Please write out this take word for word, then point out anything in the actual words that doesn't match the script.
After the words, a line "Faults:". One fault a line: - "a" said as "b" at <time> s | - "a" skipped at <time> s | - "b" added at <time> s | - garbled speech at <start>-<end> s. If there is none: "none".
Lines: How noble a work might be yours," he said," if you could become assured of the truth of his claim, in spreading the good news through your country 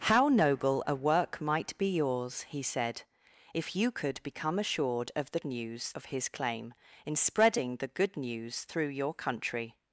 How noble a work might be yours," he said," if you could become assured of the news of his claim, in spreading the good news through your country
Faults:
- "truth" said as "news" at 5.4 s